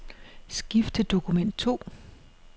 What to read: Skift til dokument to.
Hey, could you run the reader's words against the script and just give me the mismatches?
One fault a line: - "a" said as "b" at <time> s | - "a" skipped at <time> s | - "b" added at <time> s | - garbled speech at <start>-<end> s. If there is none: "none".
none